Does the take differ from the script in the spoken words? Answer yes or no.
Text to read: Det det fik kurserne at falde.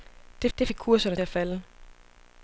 no